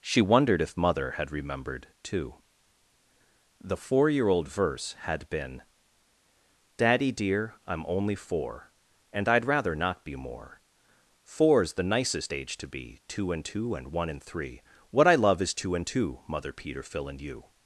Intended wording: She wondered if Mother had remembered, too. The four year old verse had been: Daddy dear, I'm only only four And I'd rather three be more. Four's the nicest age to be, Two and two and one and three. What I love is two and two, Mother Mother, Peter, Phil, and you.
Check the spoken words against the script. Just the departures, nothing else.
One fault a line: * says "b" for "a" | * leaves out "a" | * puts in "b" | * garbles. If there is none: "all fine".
* leaves out "only"
* says "not" for "three"
* leaves out "Mother"